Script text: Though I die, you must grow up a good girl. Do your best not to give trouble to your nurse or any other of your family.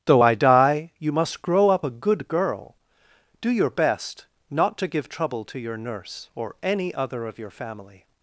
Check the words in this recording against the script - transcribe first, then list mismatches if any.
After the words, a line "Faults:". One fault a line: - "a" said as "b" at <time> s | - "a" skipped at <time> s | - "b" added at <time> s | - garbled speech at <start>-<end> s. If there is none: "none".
Though I die, you must grow up a good girl. Do your best not to give trouble to your nurse or any other of your family.
Faults:
none